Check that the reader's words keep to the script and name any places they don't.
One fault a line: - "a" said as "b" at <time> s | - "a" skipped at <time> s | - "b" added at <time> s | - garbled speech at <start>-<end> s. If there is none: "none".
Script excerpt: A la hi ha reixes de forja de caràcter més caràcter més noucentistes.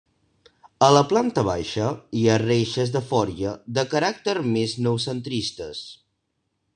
- "planta baixa" added at 1.1 s
- "caràcter més" skipped at 4.8 s